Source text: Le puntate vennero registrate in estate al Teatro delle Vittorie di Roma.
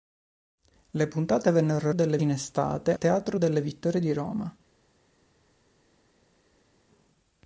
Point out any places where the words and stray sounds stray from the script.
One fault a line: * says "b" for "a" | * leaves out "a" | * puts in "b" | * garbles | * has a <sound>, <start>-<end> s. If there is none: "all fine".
* says "delle" for "registrate"
* leaves out "al"